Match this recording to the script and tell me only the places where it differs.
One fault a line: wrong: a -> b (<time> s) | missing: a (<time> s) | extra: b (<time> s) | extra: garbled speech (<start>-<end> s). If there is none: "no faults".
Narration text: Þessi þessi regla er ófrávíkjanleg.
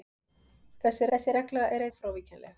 no faults